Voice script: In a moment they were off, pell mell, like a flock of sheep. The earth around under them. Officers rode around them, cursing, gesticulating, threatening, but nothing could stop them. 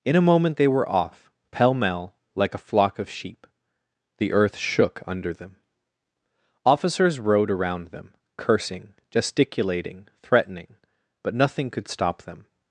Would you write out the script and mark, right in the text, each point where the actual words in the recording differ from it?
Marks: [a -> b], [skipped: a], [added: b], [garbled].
In a moment they were off, pell mell, like a flock of sheep. The earth [around -> shook] under them. Officers rode around them, cursing, gesticulating, threatening, but nothing could stop them.